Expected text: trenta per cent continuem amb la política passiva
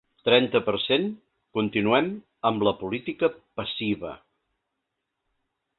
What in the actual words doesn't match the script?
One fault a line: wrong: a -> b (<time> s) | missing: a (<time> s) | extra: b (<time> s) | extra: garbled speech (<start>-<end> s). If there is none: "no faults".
no faults